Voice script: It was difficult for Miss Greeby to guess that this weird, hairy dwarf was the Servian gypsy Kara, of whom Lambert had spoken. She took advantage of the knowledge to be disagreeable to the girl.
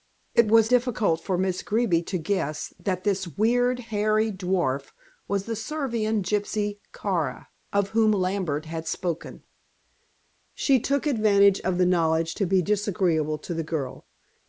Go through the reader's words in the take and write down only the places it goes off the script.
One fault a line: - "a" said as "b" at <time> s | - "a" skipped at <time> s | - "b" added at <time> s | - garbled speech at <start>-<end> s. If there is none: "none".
none